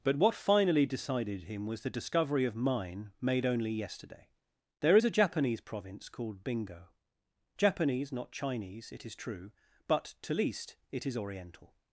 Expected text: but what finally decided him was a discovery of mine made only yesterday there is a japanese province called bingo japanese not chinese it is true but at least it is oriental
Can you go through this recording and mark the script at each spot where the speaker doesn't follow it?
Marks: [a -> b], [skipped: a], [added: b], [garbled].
but what finally decided him was [a -> the] discovery of mine made only yesterday there is a japanese province called bingo japanese not chinese it is true but [at -> to] least it is oriental